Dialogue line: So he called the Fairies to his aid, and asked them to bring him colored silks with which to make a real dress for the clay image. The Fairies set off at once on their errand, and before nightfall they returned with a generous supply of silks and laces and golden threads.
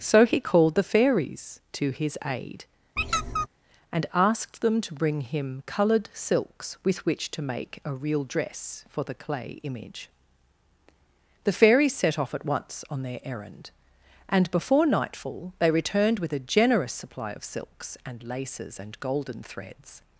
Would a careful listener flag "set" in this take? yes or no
no